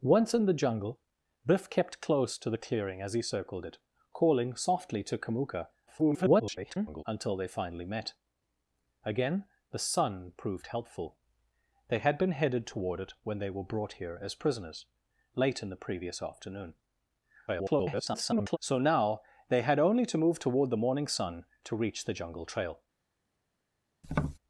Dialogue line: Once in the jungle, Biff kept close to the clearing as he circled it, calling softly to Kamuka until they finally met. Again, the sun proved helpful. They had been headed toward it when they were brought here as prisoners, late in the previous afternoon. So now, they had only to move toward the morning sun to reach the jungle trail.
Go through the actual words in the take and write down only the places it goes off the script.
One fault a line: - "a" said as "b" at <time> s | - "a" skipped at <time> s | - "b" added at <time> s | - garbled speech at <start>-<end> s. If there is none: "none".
- garbled speech at 5.9-7.0 s
- garbled speech at 17.5-18.6 s